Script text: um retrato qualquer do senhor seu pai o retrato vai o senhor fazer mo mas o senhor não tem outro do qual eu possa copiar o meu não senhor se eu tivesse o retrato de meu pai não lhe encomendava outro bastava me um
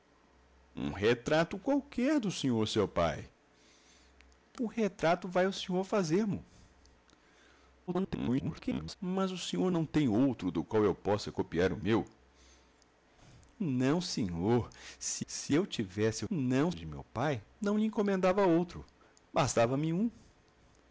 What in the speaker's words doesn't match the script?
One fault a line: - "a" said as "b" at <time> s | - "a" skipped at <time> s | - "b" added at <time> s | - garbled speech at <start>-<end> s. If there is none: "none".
- garbled speech at 7.9-9.0 s
- "se" added at 15.2 s
- "retrato" said as "não" at 16.3 s